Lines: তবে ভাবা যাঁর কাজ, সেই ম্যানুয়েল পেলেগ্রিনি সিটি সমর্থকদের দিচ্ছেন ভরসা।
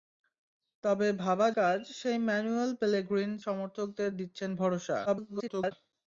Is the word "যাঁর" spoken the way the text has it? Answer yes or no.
no